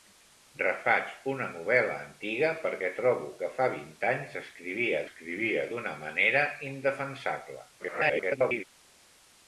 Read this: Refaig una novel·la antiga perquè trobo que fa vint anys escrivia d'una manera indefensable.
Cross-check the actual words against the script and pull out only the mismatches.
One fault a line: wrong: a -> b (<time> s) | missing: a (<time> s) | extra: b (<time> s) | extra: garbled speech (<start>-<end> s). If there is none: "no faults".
extra: escrivia (5.1 s)
extra: garbled speech (7.8-8.6 s)